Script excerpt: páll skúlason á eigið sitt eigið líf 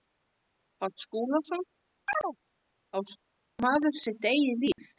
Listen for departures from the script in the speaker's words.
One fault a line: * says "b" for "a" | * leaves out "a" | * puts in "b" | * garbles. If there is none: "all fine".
* says "maður" for "eigið"